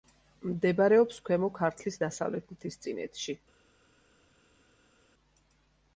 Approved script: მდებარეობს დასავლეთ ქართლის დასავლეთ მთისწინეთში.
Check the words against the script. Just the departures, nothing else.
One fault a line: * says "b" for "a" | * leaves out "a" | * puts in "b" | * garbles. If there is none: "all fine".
* says "ქვემო" for "დასავლეთ"